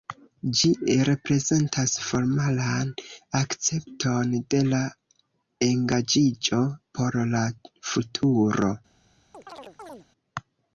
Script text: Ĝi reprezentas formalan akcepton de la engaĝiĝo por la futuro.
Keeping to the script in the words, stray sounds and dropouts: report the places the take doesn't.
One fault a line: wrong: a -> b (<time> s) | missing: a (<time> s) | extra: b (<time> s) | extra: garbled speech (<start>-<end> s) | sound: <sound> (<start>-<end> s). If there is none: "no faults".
sound: chirp (9.3-10.1 s)